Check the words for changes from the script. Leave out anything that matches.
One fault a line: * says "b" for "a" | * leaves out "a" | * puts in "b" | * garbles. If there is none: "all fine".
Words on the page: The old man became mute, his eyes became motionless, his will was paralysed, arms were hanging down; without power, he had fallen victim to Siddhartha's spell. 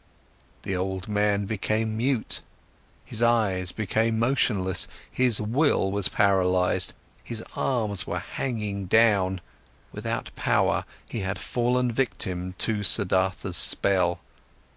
* puts in "his"